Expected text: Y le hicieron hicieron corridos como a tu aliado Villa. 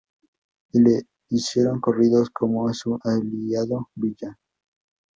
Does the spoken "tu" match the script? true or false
false